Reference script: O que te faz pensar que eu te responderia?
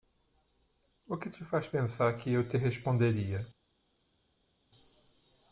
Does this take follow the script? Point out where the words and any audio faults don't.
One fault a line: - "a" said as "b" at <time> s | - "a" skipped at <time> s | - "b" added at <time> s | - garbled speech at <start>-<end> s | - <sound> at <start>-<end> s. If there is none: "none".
none